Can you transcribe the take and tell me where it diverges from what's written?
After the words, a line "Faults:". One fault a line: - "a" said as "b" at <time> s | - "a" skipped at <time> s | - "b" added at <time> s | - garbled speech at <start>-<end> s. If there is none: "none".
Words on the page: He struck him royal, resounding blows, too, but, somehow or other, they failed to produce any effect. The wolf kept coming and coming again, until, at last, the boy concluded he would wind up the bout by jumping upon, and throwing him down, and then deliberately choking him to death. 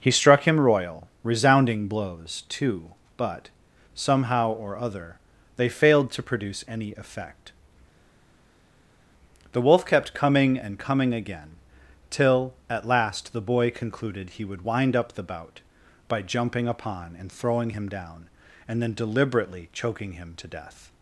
He struck him royal, resounding blows, too, but, somehow or other, they failed to produce any effect. The wolf kept coming and coming again, till, at last, the boy concluded he would wind up the bout by jumping upon, and throwing him down, and then deliberately choking him to death.
Faults:
- "until" said as "till" at 12.1 s